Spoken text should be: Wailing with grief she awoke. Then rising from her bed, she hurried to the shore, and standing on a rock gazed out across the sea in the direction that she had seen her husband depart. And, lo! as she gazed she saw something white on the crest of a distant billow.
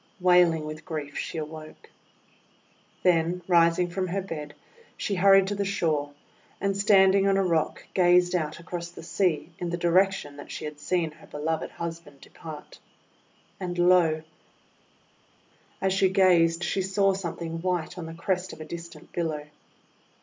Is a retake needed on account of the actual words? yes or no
yes